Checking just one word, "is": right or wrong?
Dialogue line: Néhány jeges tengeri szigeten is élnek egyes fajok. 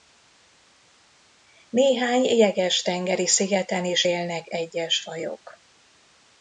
right